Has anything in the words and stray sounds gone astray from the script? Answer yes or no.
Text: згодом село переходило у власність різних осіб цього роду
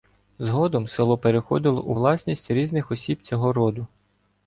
no